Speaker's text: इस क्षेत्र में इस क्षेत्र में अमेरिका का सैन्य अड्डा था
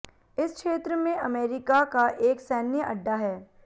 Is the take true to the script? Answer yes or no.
no